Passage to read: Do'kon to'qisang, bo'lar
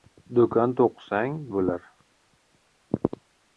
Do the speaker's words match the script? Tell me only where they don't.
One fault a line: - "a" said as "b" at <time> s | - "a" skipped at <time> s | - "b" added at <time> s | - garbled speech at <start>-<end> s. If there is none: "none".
none